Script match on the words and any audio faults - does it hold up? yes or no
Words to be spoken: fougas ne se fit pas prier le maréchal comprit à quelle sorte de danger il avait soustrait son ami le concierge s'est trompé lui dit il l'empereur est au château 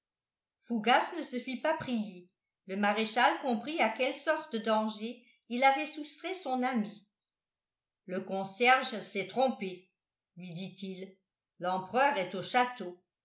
yes